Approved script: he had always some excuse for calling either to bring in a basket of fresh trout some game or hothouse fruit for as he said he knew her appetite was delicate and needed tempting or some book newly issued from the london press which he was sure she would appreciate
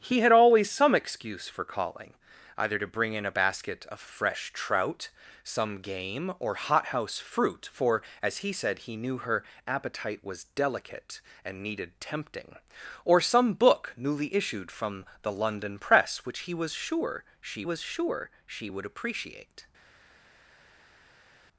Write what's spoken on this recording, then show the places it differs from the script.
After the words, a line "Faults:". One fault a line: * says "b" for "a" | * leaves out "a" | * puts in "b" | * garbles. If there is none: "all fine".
he had always some excuse for calling either to bring in a basket of fresh trout some game or hothouse fruit for as he said he knew her appetite was delicate and needed tempting or some book newly issued from the london press which he was sure she was sure she would appreciate
Faults:
* puts in "was sure she"